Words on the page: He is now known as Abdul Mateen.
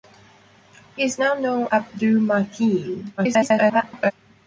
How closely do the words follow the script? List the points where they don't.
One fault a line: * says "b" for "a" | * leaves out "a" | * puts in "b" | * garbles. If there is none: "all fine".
* leaves out "as"
* garbles